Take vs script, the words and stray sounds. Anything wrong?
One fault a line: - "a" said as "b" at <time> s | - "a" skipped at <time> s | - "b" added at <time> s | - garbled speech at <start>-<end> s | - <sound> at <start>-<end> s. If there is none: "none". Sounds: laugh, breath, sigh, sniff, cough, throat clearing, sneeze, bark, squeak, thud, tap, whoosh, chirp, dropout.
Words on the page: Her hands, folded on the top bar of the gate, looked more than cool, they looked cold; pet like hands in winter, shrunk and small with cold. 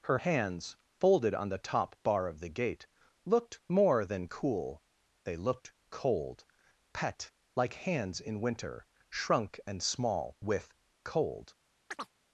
- chirp at 11.9-12.1 s